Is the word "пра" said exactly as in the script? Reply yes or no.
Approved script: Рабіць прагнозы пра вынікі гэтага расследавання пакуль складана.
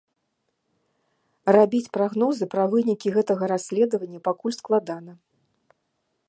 yes